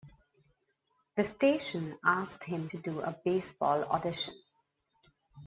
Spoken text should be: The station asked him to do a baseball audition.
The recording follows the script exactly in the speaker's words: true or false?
true